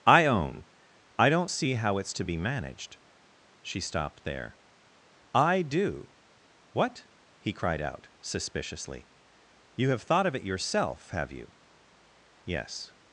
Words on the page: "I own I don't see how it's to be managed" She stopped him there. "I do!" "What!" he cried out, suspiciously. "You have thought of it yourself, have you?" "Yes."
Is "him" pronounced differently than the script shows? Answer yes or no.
yes